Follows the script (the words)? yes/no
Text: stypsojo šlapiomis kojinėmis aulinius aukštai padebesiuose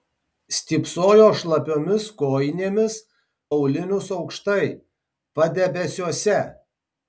yes